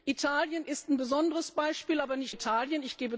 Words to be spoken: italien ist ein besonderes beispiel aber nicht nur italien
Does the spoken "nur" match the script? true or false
false